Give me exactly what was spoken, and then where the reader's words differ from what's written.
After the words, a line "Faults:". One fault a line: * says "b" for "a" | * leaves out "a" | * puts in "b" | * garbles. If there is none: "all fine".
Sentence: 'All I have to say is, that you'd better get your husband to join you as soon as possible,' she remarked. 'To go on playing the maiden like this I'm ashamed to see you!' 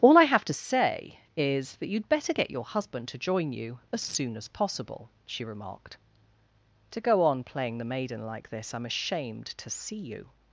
'All I have to say is, that you'd better get your husband to join you as soon as possible,' she remarked. 'To go on playing the maiden like this I'm ashamed to see you!'
Faults:
all fine